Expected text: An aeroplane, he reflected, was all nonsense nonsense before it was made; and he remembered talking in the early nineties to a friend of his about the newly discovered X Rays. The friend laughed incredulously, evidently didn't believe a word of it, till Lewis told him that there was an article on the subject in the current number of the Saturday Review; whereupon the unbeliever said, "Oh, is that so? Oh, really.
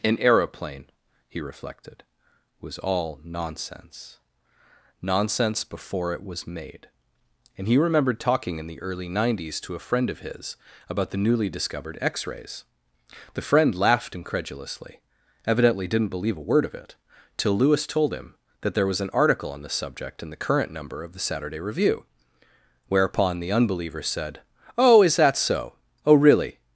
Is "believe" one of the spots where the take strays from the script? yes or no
no